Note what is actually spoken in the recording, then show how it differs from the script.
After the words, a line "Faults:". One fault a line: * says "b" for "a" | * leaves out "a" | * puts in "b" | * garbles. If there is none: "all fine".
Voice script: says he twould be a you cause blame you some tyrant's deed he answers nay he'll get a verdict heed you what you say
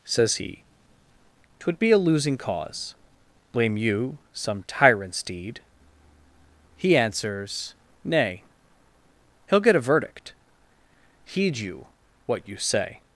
says he twould be a losing cause blame you some tyrant's deed he answers nay he'll get a verdict heed you what you say
Faults:
* says "losing" for "you"